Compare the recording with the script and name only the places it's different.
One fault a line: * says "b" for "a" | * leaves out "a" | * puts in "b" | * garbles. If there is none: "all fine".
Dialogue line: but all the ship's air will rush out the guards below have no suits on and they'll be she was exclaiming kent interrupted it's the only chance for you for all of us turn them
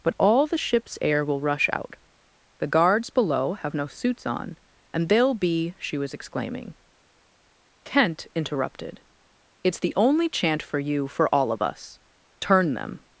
* says "chant" for "chance"